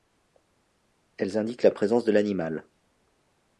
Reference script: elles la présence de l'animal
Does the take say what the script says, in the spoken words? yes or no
no